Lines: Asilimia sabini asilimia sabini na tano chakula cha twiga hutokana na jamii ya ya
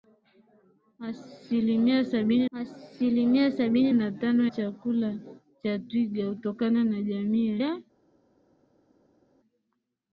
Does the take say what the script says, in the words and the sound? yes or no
yes